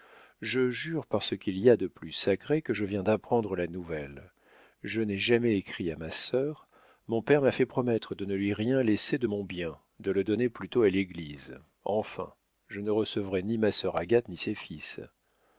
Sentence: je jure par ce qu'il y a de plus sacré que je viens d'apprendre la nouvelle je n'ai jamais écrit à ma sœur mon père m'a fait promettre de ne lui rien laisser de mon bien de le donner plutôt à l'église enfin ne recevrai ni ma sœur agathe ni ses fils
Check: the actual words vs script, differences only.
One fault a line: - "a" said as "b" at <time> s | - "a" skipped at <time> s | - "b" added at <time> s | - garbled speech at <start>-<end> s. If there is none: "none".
- "je" added at 12.7 s